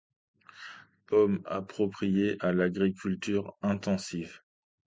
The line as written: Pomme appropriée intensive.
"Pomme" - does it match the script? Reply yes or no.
yes